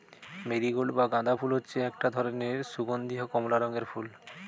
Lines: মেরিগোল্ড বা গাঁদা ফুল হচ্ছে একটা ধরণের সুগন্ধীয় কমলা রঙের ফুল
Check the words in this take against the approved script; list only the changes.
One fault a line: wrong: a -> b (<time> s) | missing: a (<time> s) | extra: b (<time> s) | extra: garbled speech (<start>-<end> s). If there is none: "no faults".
no faults